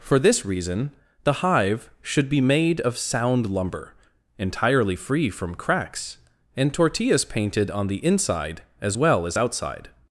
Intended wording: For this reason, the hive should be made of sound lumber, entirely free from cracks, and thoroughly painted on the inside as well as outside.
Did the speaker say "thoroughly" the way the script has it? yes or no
no